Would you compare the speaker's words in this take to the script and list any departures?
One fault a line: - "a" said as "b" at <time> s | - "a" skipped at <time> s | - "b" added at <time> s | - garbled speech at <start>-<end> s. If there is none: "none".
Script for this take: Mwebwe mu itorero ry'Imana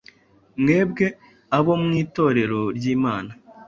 - "abo" added at 1.6 s